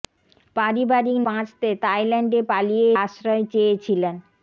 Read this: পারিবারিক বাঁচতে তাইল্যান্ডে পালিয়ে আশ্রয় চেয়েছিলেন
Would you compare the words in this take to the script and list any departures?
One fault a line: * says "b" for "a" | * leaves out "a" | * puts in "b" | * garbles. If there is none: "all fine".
all fine